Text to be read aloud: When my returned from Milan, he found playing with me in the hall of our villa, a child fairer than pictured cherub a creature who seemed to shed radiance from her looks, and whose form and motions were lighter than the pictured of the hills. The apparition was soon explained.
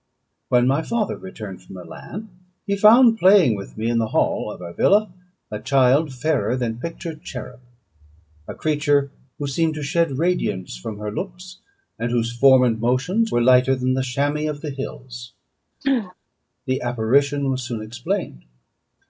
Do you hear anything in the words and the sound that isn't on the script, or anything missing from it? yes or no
yes